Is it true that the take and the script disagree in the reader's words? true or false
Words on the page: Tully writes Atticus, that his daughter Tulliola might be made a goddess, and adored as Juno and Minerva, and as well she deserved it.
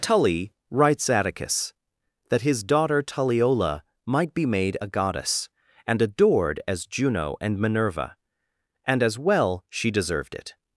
false